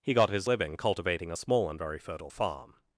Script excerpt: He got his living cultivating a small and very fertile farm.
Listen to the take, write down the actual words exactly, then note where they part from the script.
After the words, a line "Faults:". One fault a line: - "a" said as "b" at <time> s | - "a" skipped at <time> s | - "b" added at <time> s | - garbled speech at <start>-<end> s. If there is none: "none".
He got his living cultivating a small and very fertile farm.
Faults:
none